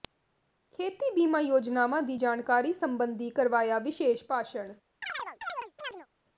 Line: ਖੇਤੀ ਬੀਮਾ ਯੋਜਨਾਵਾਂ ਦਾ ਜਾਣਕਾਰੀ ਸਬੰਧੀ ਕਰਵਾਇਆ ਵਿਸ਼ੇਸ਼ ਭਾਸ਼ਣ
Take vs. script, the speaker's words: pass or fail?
fail